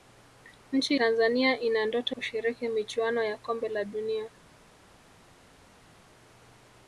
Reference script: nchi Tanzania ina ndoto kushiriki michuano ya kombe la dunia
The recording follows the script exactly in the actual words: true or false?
true